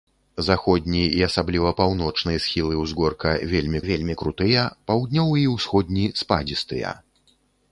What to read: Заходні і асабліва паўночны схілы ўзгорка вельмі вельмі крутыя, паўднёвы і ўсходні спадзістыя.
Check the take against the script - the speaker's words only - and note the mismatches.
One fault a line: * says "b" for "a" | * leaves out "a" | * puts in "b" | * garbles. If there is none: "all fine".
all fine